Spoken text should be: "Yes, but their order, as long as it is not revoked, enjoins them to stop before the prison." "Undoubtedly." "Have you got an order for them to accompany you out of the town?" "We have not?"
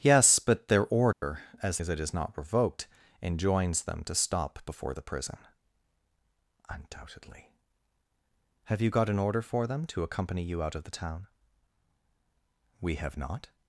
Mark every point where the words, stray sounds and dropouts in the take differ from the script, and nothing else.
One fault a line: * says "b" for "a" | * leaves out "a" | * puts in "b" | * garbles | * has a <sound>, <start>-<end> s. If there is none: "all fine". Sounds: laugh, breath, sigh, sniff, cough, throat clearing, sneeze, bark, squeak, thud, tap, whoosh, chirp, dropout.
* has a dropout, 1.1-1.2 s
* leaves out "long"